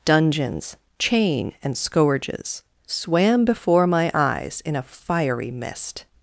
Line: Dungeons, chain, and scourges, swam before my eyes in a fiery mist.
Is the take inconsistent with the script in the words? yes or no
no